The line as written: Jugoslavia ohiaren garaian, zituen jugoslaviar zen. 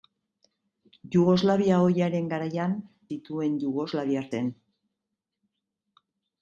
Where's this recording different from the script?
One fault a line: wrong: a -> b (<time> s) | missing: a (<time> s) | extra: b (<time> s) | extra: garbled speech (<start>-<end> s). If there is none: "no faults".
no faults